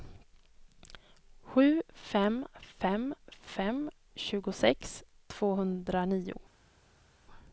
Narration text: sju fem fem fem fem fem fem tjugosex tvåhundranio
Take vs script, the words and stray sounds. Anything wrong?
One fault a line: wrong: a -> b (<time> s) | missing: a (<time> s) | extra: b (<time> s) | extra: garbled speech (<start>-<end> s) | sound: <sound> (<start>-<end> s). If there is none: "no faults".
missing: fem fem fem (3.9 s)